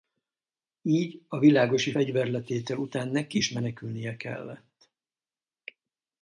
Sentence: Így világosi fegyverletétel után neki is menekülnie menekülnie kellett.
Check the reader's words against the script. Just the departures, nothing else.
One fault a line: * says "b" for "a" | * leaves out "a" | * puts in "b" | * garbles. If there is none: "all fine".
* puts in "a"
* leaves out "menekülnie"